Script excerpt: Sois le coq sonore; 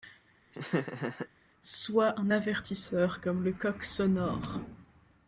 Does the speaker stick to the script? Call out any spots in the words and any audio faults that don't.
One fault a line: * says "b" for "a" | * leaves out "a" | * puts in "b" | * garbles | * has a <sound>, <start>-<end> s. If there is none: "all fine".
* has a laugh, 0.5-1.3 s
* puts in "un avertisseur comme"